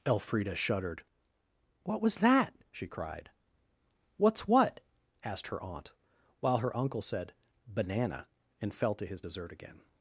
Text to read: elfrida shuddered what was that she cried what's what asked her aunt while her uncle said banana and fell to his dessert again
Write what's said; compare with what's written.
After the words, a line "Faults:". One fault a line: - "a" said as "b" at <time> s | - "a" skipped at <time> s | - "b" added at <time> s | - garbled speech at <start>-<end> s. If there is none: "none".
elfrida shuddered what was that she cried what's what asked her aunt while her uncle said banana and fell to his dessert again
Faults:
none